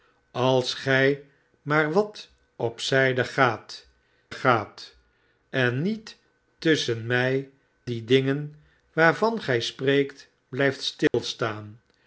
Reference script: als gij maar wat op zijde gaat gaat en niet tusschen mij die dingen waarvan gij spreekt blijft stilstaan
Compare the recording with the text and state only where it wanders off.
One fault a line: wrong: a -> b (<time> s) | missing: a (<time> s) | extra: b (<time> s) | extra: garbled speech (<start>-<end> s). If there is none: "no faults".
no faults